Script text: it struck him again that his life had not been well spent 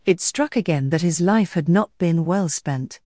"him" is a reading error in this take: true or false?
true